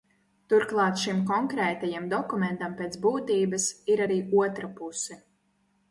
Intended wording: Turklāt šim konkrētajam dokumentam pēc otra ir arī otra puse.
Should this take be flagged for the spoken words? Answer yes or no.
yes